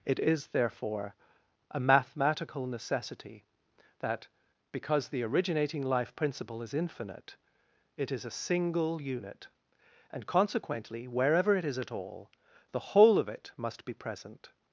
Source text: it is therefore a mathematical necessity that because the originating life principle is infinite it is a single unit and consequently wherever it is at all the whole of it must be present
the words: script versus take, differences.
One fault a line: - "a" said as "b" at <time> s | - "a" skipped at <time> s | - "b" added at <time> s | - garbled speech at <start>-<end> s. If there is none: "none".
none